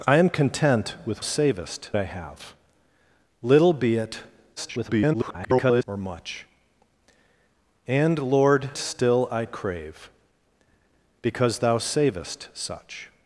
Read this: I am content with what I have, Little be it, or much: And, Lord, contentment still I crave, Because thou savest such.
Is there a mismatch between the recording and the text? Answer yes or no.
yes